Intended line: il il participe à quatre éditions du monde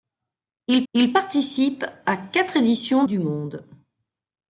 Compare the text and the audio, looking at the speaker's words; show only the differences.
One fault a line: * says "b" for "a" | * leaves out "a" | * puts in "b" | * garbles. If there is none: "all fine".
all fine